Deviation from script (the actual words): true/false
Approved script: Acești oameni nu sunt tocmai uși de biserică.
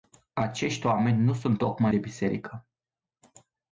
true